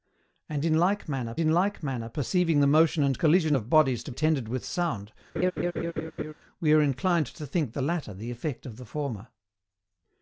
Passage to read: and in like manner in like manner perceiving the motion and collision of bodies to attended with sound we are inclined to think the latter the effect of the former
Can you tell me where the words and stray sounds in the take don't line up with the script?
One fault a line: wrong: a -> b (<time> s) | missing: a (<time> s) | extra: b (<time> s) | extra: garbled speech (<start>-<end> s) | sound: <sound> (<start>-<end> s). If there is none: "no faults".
sound: laugh (5.4-6.3 s)